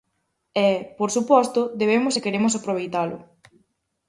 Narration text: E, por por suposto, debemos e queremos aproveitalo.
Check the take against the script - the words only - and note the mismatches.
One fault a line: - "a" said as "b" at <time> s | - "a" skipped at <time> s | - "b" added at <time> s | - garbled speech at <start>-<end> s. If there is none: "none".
- "por" skipped at 1.1 s